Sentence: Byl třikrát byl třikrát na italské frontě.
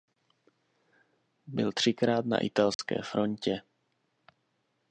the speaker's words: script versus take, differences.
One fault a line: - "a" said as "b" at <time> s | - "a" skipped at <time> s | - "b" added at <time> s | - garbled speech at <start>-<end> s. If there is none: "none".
- "byl třikrát" skipped at 2.3 s